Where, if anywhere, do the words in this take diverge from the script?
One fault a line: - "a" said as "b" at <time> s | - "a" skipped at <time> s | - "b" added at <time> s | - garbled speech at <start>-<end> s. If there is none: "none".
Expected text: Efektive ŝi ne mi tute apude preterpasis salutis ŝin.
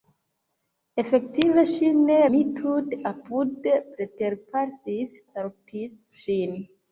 none